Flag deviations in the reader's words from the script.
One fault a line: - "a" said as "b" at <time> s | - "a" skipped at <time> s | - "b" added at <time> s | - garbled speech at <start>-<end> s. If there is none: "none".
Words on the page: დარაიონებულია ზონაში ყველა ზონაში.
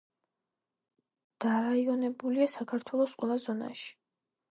- "ზონაში" said as "საქართველოს" at 2.5 s